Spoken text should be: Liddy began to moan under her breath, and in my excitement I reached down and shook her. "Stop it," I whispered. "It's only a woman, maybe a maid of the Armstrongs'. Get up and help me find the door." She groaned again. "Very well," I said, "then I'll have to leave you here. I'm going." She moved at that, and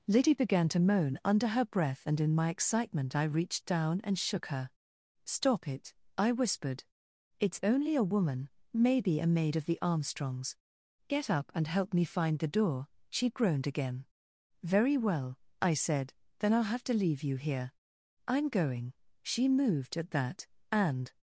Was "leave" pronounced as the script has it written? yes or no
yes